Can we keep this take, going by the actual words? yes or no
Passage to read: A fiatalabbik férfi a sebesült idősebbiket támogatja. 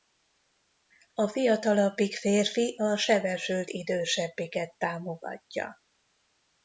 yes